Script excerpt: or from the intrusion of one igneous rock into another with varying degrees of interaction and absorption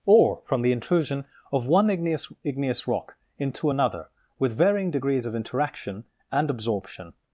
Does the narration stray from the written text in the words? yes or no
yes